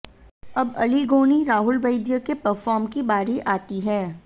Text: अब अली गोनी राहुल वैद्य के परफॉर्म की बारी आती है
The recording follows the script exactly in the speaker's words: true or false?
true